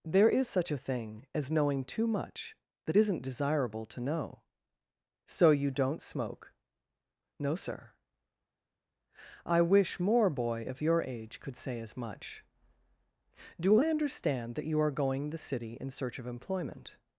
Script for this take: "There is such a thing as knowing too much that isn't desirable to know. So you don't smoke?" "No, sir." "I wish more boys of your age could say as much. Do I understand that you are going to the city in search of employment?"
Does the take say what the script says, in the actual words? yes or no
no